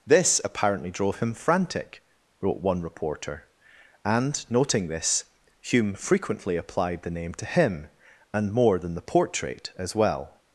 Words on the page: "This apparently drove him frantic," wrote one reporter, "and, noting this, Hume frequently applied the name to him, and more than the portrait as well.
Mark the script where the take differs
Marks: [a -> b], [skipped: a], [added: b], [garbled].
"This apparently drove him frantic," wrote one reporter, "and, noting this, Hume frequently applied the name to him, and more than the portrait as well.